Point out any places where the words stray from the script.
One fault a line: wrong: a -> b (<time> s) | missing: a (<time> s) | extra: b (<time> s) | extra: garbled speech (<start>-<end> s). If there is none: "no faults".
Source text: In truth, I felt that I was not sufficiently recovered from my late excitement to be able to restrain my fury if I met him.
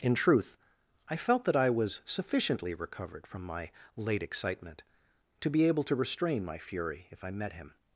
missing: not (2.0 s)